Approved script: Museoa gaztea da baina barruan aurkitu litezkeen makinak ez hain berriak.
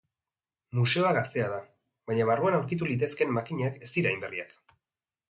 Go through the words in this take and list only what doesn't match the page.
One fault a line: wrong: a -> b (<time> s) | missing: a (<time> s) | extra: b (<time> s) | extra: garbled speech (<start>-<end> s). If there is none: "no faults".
extra: dira (4.0 s)